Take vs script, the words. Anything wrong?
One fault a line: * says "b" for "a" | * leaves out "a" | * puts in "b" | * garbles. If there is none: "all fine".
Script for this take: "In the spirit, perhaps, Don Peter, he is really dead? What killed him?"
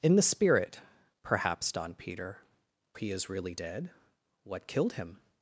all fine